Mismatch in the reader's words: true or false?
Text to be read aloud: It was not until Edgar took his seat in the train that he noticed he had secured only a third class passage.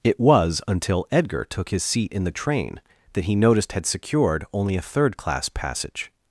true